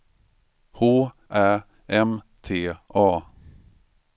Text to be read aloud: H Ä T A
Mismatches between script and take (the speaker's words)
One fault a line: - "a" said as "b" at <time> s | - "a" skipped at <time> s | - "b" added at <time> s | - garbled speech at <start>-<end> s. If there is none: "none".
- "M" added at 1.9 s